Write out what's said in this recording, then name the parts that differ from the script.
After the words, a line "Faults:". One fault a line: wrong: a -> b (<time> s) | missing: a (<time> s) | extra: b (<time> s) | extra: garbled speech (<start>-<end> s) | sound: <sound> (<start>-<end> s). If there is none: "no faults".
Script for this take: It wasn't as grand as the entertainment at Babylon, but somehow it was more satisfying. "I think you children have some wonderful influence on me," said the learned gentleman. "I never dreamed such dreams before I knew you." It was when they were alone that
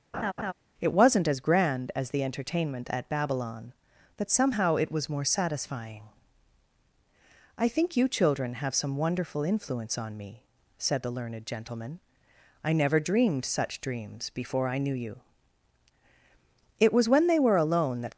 It wasn't as grand as the entertainment at Babylon, but somehow it was more satisfying. "I think you children have some wonderful influence on me," said the learned gentleman. "I never dreamed such dreams before I knew you." It was when they were alone that
Faults:
sound: laugh (0.1-0.5 s)